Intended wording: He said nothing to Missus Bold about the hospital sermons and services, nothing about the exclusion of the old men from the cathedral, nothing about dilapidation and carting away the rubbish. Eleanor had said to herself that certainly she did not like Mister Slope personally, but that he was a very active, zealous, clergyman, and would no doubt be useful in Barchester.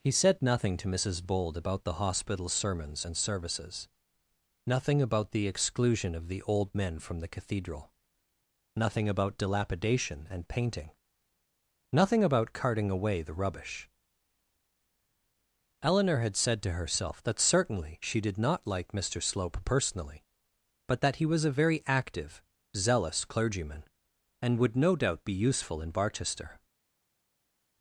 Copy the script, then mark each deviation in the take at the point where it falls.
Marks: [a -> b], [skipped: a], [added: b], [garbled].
He said nothing to Missus Bold about the hospital sermons and services, nothing about the exclusion of the old men from the cathedral, nothing about dilapidation and [added: painting nothing about] carting away the rubbish. Eleanor had said to herself that certainly she did not like Mister Slope personally, but that he was a very active, zealous, clergyman, and would no doubt be useful in Barchester.